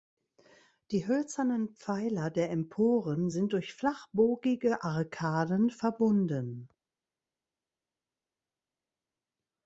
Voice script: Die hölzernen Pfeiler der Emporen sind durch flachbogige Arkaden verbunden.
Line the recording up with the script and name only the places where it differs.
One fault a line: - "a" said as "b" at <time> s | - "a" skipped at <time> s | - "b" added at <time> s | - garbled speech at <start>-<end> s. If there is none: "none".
none